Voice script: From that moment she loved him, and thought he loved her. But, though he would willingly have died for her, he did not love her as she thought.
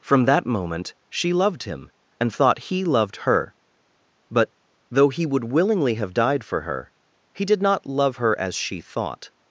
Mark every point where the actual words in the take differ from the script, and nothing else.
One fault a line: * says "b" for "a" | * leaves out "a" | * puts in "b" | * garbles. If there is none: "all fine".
all fine